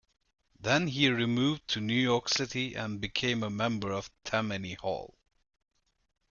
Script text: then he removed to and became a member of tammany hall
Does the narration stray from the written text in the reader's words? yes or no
yes